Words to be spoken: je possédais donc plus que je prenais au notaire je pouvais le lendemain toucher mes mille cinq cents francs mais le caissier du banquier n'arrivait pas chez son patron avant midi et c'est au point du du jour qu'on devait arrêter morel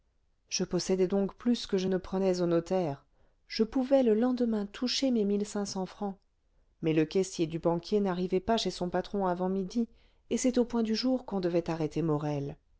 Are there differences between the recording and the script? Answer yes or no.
yes